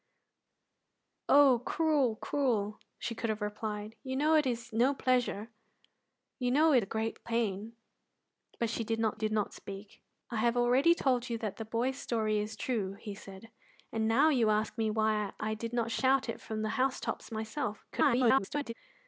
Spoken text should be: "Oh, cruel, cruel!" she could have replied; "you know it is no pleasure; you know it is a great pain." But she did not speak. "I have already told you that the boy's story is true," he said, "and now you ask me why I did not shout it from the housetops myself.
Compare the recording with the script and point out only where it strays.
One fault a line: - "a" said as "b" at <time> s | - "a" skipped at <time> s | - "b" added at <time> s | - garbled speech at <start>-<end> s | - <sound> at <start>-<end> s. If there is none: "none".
- "is" skipped at 6.8 s
- "did not" added at 9.1 s
- garbled speech at 17.9-18.7 s